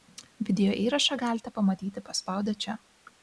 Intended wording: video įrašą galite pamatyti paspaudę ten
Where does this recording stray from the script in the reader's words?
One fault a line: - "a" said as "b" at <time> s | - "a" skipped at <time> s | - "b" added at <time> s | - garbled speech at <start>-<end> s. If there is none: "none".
- "ten" said as "čia" at 2.6 s